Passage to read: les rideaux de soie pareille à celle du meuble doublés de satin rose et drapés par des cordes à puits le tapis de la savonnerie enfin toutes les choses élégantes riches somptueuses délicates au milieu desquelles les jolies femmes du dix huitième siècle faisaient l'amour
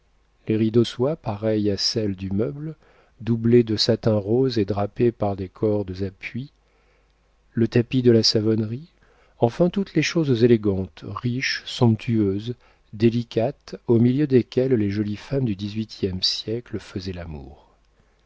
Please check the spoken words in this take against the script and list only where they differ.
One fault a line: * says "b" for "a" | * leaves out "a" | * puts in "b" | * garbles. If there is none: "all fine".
* leaves out "de"